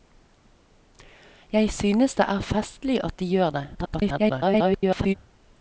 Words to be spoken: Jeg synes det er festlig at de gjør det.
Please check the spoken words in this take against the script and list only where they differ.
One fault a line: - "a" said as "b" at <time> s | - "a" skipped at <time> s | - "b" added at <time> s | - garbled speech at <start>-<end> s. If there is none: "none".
- garbled speech at 3.7-5.1 s